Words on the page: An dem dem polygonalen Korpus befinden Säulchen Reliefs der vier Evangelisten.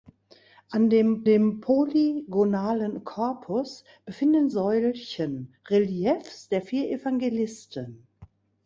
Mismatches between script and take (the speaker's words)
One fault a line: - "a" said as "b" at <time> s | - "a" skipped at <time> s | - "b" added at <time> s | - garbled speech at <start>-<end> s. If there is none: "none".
none